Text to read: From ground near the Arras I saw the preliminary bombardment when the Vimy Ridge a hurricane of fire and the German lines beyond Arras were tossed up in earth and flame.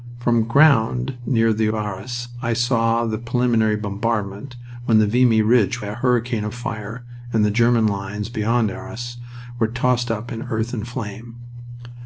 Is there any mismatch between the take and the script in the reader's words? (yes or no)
no